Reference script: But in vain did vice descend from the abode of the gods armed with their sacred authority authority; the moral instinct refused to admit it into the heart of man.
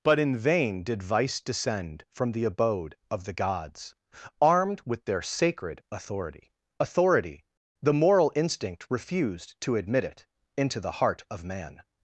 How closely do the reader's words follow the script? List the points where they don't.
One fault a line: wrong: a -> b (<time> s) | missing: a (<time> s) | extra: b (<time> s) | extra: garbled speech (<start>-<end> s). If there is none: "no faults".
no faults